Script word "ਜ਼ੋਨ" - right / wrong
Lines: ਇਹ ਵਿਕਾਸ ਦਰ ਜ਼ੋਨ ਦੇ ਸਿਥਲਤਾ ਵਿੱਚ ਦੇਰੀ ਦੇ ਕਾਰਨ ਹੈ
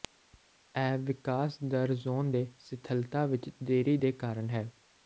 right